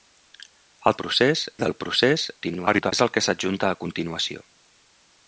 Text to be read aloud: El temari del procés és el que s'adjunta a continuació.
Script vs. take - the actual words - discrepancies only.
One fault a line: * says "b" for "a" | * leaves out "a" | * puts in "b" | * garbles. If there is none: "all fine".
* says "procés" for "temari"
* garbles